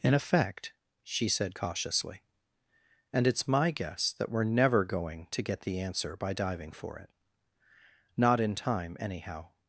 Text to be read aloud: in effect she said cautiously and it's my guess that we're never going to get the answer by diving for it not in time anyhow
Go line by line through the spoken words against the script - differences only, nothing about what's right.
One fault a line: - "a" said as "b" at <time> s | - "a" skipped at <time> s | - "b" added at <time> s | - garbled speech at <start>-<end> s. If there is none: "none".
none